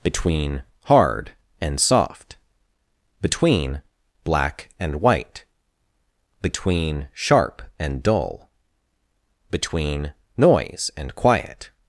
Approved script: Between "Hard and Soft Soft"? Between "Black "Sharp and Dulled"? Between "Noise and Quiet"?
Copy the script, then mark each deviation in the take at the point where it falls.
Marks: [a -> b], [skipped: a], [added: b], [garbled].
Between "Hard and Soft [skipped: Soft"?] Between "Black [added: and White Between] "Sharp and [Dulled"? -> Dull] Between "Noise and Quiet"?